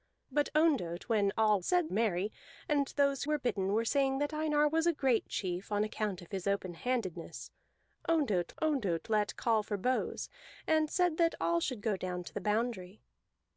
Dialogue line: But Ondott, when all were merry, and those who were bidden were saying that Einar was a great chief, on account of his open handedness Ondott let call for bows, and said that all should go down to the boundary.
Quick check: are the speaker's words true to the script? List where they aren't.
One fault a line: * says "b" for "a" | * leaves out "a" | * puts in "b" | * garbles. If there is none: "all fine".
* says "said" for "were"
* leaves out "who"
* puts in "Ondott"